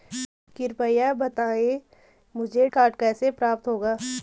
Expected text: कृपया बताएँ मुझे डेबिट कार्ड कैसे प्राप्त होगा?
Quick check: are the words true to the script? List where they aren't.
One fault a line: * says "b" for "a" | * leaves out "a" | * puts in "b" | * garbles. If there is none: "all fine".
* leaves out "डेबिट"